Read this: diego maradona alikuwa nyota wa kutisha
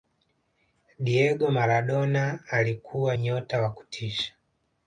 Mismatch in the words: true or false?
false